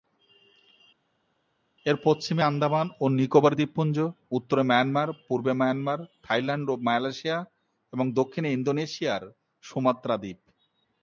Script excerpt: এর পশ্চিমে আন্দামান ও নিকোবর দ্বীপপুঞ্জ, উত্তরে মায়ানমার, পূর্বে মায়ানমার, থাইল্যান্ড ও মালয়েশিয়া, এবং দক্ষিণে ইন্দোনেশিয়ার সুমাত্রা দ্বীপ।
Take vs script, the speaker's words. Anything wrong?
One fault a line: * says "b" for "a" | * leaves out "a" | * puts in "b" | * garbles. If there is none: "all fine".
all fine